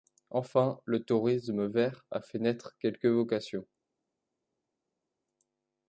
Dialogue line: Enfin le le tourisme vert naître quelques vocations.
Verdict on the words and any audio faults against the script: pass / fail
fail